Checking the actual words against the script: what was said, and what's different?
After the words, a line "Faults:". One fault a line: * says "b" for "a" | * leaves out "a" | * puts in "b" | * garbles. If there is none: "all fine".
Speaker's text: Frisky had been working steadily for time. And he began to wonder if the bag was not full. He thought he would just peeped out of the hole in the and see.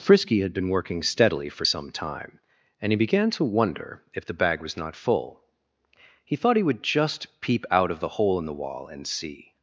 Frisky had been working steadily for some time. And he began to wonder if the bag was not full. He thought he would just peep out of the hole in the wall and see.
Faults:
* puts in "some"
* says "peep" for "peeped"
* puts in "wall"